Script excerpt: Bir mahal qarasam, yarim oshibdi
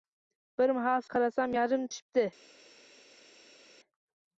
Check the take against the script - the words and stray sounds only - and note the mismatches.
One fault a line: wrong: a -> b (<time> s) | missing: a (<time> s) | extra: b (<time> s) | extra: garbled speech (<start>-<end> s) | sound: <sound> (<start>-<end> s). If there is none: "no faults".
no faults